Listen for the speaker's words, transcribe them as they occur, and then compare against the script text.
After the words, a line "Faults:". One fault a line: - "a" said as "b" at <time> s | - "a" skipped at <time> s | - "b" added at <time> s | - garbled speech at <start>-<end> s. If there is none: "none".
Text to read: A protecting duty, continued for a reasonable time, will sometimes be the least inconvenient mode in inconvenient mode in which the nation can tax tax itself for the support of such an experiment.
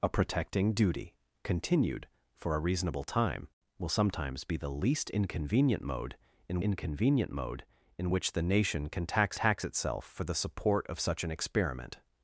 A protecting duty, continued for a reasonable time, will sometimes be the least inconvenient mode in inconvenient mode in which the nation can tax tax itself for the support of such an experiment.
Faults:
none